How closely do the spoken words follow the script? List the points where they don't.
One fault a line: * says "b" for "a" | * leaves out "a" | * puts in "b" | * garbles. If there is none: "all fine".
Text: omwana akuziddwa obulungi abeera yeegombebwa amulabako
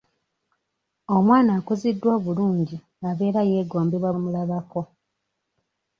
all fine